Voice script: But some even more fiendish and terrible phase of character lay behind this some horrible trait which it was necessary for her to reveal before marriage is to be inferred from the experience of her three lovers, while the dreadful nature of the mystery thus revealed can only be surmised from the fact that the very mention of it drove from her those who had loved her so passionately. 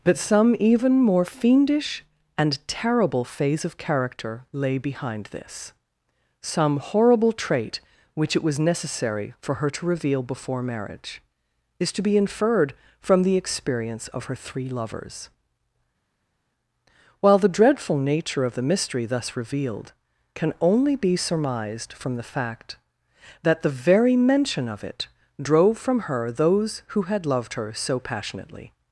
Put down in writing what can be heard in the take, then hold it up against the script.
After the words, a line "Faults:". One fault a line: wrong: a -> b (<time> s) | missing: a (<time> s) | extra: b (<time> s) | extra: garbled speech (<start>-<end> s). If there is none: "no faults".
But some even more fiendish and terrible phase of character lay behind this some horrible trait which it was necessary for her to reveal before marriage is to be inferred from the experience of her three lovers, while the dreadful nature of the mystery thus revealed can only be surmised from the fact that the very mention of it drove from her those who had loved her so passionately.
Faults:
no faults